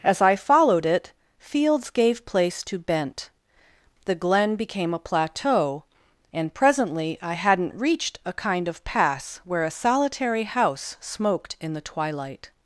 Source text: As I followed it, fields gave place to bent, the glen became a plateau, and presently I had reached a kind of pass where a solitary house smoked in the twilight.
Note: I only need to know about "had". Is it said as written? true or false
false